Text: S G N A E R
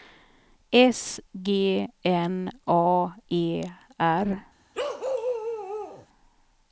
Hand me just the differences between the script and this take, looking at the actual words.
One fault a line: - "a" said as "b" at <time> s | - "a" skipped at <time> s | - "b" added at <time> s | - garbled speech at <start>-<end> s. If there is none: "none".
none